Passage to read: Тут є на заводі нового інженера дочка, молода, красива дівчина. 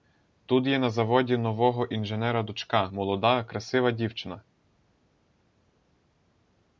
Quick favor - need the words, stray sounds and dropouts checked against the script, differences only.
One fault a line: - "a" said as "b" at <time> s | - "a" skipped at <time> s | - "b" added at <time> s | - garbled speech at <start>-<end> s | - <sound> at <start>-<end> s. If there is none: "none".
none